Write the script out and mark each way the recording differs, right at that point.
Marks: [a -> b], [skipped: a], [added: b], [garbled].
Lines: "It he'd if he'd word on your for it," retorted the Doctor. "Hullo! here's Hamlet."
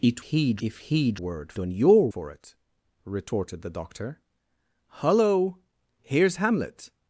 "It he'd if he'd word on your for it," retorted the Doctor. "Hullo! here's Hamlet."